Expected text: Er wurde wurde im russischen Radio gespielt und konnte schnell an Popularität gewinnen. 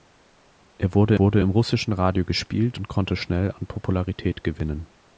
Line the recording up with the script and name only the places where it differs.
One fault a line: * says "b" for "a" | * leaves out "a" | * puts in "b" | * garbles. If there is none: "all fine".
all fine